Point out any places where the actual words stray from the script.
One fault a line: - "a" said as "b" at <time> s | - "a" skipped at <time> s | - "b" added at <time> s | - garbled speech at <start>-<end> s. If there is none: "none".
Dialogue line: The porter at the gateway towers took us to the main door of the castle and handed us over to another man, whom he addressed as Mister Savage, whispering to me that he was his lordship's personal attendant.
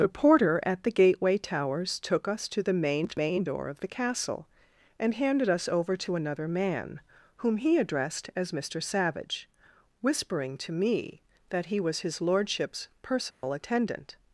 - "main" added at 3.1 s